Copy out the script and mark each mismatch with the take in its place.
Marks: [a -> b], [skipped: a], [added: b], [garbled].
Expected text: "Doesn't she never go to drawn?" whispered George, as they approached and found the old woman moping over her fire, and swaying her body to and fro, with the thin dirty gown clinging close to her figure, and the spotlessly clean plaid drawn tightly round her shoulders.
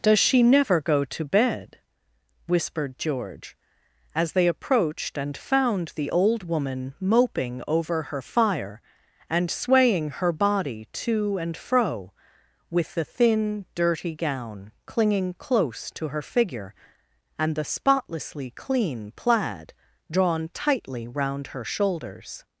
["Doesn't -> Does] she never go to [drawn?" -> bed] whispered George, as they approached and found the old woman moping over her fire, and swaying her body to and fro, with the thin dirty gown clinging close to her figure, and the spotlessly clean plaid drawn tightly round her shoulders.